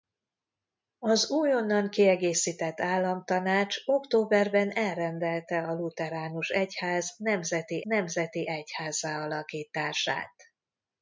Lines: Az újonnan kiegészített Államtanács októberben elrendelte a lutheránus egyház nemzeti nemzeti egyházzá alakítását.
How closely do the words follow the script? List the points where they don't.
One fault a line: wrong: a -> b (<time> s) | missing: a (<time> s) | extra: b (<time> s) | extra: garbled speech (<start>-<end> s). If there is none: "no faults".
no faults